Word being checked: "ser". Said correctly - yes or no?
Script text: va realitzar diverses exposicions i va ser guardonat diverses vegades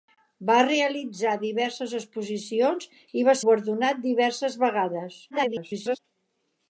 no